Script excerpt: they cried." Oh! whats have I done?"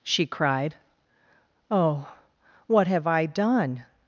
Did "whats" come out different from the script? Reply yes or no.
yes